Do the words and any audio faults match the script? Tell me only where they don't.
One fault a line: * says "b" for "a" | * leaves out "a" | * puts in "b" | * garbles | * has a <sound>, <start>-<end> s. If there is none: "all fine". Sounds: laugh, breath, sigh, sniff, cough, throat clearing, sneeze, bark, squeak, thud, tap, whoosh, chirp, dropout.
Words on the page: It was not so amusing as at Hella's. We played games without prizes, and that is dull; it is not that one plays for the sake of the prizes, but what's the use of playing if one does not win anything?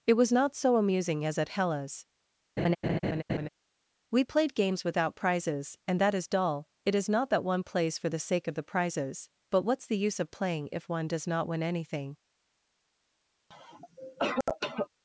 * has a laugh, 2.6-3.5 s
* has a cough, 13.5-14.9 s